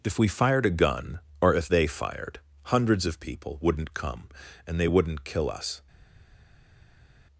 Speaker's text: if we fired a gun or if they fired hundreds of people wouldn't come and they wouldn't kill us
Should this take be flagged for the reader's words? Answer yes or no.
no